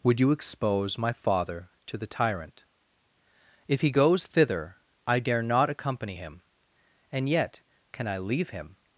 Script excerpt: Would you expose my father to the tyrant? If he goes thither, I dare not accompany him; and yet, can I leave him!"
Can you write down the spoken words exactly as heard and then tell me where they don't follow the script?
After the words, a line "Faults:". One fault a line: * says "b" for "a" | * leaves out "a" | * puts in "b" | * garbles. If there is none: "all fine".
Would you expose my father to the tyrant? If he goes thither, I dare not accompany him; and yet, can I leave him!"
Faults:
all fine